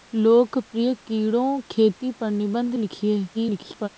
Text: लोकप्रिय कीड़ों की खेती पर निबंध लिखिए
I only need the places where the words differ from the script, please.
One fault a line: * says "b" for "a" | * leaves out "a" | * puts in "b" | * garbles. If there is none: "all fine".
* leaves out "की"
* garbles